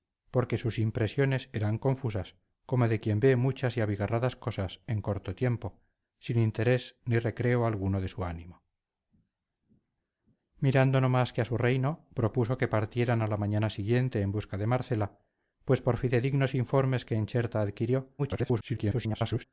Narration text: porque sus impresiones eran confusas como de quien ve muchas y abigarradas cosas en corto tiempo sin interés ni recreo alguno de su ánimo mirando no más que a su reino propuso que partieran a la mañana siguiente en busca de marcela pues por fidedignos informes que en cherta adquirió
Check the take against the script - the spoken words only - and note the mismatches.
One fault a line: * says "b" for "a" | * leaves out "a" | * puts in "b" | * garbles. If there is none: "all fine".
* garbles